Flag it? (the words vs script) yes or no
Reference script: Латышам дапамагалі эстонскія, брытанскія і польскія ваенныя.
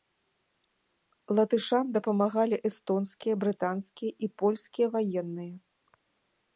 no